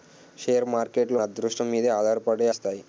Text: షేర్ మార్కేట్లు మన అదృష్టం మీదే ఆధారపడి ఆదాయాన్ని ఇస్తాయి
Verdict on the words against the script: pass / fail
fail